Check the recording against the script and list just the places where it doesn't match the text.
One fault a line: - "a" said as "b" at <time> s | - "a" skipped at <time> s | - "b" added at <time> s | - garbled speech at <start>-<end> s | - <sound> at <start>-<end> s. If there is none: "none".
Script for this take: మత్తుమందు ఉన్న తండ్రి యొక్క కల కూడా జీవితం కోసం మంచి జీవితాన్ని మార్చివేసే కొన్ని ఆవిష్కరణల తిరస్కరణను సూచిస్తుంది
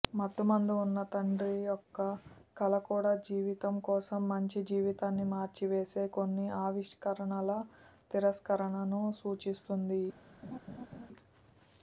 - laugh at 10.4-11.1 s